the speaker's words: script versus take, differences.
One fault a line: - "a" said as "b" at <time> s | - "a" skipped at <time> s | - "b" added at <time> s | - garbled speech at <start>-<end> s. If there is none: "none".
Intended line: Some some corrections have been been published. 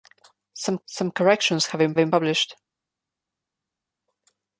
none